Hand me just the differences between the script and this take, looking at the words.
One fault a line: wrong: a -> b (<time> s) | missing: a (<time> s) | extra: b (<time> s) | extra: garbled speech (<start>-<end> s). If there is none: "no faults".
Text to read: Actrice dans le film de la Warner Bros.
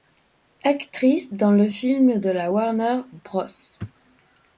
no faults